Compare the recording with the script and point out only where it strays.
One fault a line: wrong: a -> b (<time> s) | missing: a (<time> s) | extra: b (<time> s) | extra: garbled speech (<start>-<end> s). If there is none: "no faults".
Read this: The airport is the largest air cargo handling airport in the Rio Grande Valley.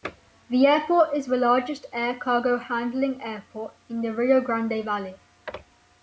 no faults